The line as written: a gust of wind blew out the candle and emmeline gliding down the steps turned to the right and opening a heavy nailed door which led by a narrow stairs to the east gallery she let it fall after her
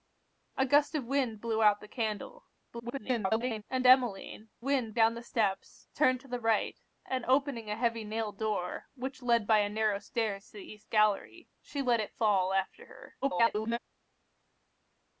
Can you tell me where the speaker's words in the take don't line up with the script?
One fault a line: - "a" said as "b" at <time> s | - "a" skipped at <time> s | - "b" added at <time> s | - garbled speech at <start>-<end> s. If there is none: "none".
- garbled speech at 2.7-3.6 s
- "gliding" said as "wind" at 4.6 s
- garbled speech at 13.2-13.8 s